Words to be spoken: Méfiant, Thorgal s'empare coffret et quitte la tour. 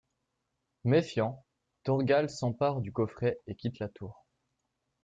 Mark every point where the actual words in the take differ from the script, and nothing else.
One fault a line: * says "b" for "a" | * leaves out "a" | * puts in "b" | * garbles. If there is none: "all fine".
* puts in "du"